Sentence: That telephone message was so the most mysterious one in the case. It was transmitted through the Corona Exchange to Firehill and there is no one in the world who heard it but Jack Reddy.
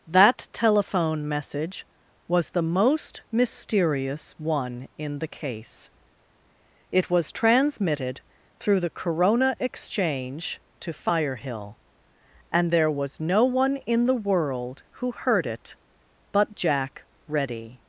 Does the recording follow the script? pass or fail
fail